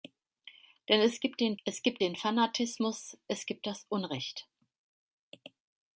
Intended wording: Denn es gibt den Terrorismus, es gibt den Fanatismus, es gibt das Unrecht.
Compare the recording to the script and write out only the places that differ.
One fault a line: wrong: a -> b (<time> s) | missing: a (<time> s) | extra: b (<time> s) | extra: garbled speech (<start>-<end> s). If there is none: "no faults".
missing: Terrorismus (1.6 s)